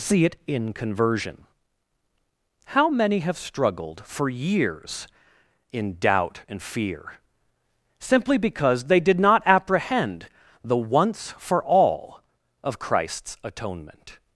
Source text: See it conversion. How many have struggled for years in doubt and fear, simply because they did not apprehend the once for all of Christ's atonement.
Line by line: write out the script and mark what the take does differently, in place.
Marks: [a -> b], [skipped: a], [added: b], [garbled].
See it [added: in] conversion. How many have struggled for years in doubt and fear, simply because they did not apprehend the once for all of Christ's atonement.